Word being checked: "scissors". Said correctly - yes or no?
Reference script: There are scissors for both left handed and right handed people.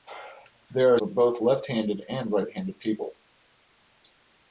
no